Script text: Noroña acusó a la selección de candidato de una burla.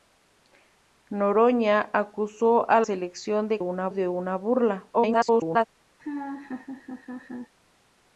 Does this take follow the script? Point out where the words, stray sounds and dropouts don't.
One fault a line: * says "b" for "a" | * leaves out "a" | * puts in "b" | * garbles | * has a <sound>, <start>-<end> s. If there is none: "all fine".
* leaves out "la"
* says "una" for "candidato"
* garbles
* has a laugh, 6.0-7.5 s